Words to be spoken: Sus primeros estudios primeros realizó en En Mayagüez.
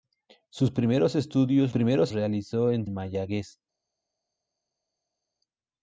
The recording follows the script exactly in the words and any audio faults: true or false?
true